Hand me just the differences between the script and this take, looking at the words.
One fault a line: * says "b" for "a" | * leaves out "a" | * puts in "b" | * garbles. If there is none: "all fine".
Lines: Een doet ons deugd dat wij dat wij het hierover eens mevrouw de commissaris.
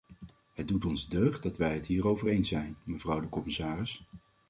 * says "Het" for "Een"
* leaves out "dat wij"
* puts in "zijn"